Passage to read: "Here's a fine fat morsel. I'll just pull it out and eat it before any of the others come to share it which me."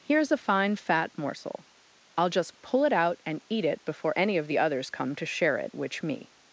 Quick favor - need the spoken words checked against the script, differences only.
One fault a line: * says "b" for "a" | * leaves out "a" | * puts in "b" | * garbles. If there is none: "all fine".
all fine